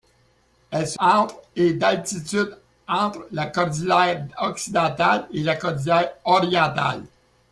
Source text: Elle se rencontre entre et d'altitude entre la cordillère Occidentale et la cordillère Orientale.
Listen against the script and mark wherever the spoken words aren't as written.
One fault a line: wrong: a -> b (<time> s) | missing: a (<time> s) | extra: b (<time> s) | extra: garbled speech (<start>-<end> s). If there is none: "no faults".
missing: rencontre (1.0 s)